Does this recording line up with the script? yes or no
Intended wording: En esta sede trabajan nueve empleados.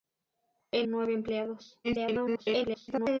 no